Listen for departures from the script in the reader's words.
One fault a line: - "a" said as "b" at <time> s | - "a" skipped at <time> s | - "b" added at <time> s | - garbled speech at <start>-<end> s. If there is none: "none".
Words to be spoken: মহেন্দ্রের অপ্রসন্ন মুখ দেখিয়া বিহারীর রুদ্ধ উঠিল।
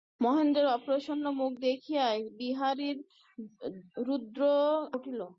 none